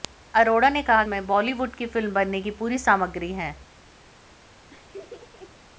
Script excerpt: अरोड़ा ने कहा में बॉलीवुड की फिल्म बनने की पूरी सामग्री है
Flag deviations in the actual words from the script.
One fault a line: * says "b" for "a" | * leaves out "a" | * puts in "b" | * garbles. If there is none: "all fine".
all fine